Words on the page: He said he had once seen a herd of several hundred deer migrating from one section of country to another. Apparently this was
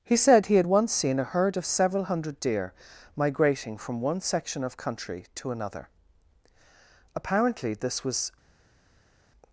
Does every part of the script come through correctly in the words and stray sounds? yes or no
yes